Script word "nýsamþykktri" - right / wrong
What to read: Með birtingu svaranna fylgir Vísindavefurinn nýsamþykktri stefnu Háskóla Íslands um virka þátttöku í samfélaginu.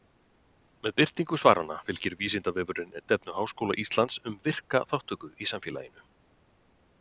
wrong